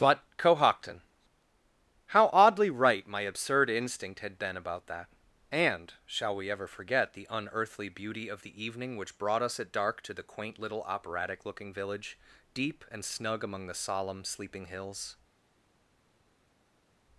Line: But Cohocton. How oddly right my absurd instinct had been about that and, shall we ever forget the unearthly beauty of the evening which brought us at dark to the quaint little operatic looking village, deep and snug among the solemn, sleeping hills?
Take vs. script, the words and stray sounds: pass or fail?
pass